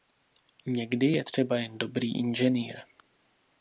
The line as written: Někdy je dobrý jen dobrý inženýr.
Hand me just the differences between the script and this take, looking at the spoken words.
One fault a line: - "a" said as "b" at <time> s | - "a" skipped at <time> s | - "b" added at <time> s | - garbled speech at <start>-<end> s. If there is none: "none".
- "dobrý" said as "třeba" at 1.2 s